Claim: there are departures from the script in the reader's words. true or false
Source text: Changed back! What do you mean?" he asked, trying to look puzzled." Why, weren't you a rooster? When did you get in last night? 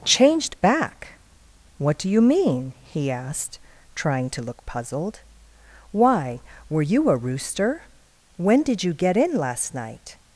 true